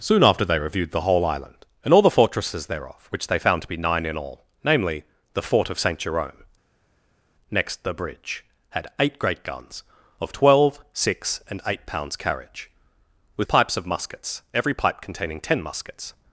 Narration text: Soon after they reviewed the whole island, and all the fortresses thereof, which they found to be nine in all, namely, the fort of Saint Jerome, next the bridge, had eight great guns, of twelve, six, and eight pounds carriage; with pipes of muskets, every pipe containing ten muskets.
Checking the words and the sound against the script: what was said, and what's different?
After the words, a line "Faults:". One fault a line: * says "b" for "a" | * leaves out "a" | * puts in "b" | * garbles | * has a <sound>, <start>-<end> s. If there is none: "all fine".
Soon after they reviewed the whole island, and all the fortresses thereof, which they found to be nine in all, namely, the fort of Saint Jerome, next the bridge, had eight great guns, of twelve, six, and eight pounds carriage; with pipes of muskets, every pipe containing ten muskets.
Faults:
all fine